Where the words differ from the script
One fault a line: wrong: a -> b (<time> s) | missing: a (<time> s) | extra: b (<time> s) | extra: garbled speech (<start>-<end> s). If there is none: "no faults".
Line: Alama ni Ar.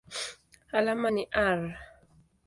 no faults